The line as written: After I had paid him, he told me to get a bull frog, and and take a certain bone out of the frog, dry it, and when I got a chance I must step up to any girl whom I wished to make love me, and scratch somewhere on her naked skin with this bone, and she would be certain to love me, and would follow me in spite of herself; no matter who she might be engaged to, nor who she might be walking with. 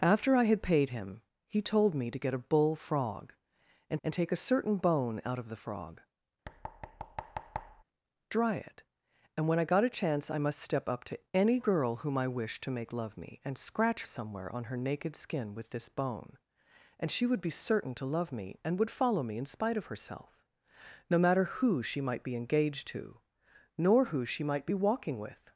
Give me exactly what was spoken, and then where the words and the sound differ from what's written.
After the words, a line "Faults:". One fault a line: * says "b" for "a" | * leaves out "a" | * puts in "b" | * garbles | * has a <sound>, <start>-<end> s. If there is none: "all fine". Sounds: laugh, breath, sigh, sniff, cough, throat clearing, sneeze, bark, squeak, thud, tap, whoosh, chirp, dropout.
After I had paid him, he told me to get a bull frog, and and take a certain bone out of the frog, dry it, and when I got a chance I must step up to any girl whom I wished to make love me, and scratch somewhere on her naked skin with this bone, and she would be certain to love me, and would follow me in spite of herself; no matter who she might be engaged to, nor who she might be walking with.
Faults:
* has a thud, 6.4-7.8 s